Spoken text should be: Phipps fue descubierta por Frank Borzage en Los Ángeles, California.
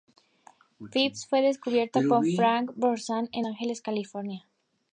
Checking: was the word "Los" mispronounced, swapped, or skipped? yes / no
yes